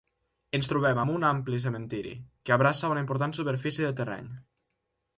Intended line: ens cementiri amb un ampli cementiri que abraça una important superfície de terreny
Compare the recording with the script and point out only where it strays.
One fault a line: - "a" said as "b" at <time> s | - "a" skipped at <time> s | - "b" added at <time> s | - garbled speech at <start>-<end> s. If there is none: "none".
- "cementiri" said as "trobem" at 0.7 s